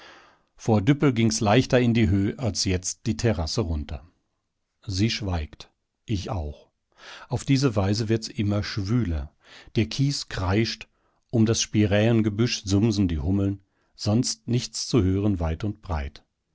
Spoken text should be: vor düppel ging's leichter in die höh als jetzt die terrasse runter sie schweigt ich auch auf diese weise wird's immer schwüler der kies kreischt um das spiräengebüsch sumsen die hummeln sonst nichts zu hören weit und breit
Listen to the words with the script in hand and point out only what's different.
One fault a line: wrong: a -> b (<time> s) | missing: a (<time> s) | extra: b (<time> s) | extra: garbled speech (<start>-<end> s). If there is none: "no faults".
no faults